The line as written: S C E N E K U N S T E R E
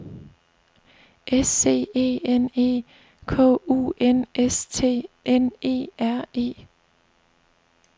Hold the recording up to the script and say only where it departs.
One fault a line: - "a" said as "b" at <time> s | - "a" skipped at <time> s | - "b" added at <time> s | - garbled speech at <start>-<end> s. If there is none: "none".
- "N" added at 5.3 s